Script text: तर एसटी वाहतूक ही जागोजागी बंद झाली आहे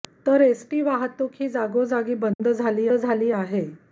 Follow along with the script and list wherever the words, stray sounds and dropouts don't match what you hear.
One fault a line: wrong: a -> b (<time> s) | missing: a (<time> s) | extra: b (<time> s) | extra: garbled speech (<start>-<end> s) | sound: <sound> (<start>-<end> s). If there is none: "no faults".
sound: dropout (2.3-2.4 s)
extra: झाली (2.9 s)